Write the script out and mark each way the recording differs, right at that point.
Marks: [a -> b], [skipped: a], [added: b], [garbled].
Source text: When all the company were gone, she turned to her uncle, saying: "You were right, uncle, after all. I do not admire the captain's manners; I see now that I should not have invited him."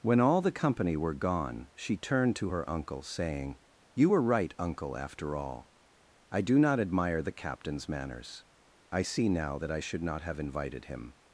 When all the company were gone, she turned to her uncle, saying: "You were right, uncle, after all. I do not admire the captain's manners; I see now that I should not have invited him."